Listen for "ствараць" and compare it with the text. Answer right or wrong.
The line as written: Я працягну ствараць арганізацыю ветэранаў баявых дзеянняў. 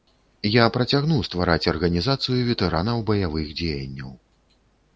right